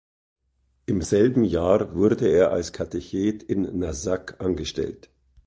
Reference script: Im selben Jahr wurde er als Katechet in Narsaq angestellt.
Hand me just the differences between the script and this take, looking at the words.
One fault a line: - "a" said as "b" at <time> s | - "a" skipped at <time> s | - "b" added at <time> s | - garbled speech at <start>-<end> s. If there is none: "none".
none